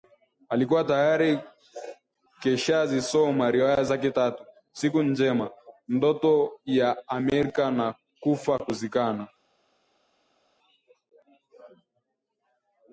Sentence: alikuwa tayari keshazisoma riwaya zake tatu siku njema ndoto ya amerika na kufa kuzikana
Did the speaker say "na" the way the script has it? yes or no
yes